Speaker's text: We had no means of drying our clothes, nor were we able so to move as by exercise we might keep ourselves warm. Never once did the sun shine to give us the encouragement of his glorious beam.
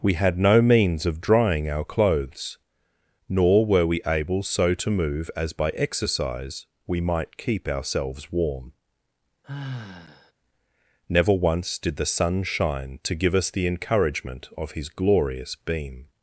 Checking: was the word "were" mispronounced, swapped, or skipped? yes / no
no